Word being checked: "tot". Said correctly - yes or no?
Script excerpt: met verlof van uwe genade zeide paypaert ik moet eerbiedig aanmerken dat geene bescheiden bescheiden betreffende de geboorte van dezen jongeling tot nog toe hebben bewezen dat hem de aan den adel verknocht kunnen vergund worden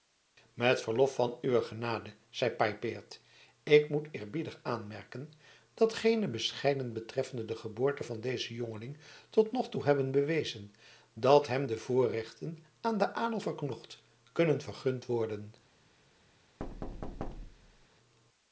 yes